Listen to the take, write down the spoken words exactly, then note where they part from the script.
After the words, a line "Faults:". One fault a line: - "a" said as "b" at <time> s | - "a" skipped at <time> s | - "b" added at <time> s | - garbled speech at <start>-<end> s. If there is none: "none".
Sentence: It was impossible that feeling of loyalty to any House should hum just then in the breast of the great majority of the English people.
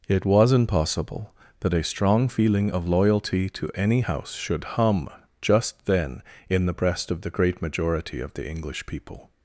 It was impossible that a strong feeling of loyalty to any House should hum just then in the breast of the great majority of the English people.
Faults:
- "a strong" added at 1.7 s